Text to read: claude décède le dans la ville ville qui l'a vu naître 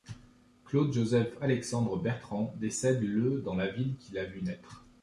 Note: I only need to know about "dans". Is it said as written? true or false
true